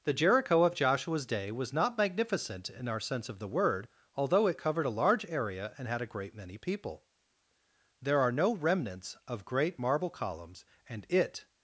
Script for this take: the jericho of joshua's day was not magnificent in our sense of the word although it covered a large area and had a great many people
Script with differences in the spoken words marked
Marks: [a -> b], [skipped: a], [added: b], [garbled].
the jericho of joshua's day was not magnificent in our sense of the word although it covered a large area and had a great many people [added: there are no remnants of great marble columns and it]